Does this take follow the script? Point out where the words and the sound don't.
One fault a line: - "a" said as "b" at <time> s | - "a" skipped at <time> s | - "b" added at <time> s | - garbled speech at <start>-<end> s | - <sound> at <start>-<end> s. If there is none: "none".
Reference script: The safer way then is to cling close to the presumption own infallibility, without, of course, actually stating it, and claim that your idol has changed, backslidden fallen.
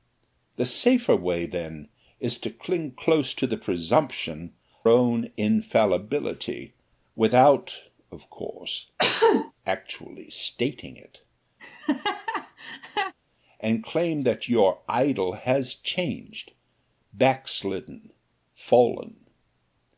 - cough at 9.0-9.5 s
- laugh at 11.6-13.1 s